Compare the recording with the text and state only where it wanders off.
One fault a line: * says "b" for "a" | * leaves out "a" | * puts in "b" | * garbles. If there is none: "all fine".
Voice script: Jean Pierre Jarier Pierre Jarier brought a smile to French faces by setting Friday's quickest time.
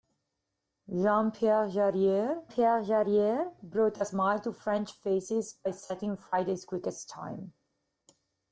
all fine